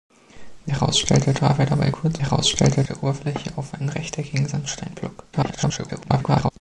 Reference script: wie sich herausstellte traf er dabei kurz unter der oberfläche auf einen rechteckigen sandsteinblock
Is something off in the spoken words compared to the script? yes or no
yes